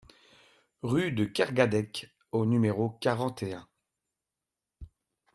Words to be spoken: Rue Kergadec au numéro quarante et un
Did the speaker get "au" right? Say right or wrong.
right